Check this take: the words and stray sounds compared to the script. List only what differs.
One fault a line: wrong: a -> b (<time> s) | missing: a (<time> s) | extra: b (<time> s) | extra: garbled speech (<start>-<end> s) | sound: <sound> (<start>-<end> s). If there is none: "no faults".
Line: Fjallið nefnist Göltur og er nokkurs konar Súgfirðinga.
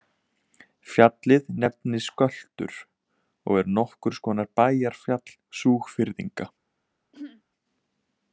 extra: bæjarfjall (4.6 s)
sound: throat clearing (7.1-7.4 s)